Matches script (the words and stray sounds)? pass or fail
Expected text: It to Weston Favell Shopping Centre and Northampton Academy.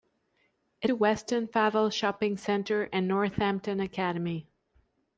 pass